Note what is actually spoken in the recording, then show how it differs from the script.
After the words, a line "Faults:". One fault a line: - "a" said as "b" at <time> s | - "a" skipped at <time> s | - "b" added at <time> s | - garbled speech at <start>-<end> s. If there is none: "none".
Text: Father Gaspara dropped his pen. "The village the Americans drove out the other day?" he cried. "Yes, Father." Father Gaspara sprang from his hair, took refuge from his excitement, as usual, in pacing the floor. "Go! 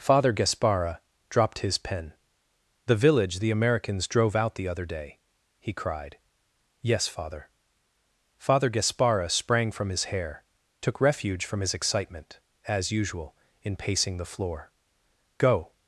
Father Gaspara dropped his pen. "The village the Americans drove out the other day?" he cried. "Yes, Father." Father Gaspara sprang from his hair, took refuge from his excitement, as usual, in pacing the floor. "Go!
Faults:
none